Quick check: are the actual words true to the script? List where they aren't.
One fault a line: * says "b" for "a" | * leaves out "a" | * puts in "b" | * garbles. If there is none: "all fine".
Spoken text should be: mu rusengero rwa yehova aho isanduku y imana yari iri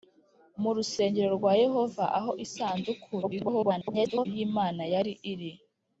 * garbles